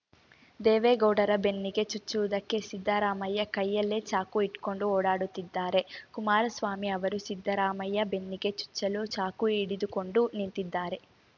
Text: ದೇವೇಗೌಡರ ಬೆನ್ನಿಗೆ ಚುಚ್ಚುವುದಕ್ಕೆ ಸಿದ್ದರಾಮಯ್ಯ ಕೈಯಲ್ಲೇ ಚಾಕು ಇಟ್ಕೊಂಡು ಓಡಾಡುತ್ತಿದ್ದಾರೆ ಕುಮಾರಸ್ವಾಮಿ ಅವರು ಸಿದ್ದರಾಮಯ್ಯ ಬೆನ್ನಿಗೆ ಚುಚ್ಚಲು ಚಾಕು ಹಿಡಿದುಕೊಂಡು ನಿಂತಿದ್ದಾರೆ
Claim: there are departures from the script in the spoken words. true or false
false